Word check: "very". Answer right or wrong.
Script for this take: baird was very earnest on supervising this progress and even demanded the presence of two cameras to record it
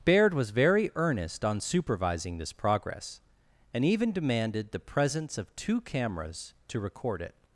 right